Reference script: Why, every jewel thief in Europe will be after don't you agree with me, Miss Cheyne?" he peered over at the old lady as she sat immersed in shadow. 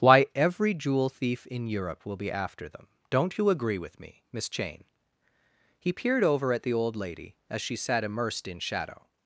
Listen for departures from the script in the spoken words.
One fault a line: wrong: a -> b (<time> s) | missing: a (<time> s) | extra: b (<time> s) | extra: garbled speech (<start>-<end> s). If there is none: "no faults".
extra: them (2.7 s)